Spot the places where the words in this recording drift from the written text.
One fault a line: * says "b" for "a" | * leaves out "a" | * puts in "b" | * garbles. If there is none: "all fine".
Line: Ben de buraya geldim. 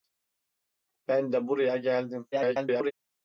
* garbles